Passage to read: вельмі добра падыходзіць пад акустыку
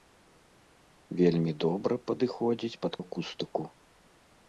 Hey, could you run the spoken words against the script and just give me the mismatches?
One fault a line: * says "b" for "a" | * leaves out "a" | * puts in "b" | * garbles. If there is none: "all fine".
all fine